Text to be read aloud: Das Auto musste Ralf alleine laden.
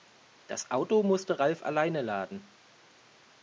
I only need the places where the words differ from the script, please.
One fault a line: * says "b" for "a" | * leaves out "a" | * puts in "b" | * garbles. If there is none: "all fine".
all fine